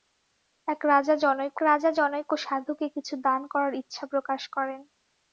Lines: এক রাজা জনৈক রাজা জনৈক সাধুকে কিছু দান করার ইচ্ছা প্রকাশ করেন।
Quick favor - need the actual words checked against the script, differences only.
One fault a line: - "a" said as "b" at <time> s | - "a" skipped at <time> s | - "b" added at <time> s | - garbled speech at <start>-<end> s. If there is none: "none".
none